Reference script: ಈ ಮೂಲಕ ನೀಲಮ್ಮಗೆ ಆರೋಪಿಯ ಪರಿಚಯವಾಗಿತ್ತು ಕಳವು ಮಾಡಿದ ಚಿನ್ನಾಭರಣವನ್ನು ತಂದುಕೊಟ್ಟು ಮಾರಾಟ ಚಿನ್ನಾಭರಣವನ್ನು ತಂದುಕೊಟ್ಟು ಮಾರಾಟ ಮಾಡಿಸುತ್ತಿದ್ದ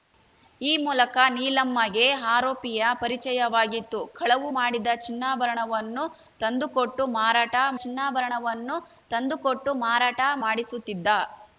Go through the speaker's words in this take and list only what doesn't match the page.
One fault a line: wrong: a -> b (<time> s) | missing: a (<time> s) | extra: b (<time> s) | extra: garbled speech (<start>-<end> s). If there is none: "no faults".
no faults